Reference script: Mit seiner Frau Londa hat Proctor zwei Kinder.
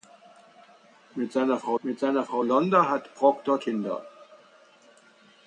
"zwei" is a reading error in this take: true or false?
true